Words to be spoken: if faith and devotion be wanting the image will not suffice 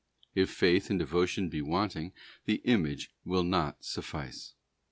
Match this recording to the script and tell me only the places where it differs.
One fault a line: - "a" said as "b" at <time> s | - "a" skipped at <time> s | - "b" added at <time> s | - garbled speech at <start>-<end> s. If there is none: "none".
none